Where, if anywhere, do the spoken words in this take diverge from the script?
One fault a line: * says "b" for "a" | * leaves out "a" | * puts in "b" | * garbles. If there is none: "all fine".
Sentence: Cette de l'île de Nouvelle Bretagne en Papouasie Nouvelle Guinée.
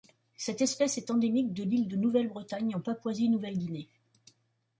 * puts in "espèce est endémique"